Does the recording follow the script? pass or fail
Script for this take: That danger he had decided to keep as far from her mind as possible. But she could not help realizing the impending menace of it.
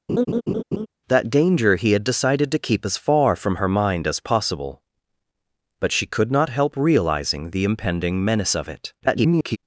fail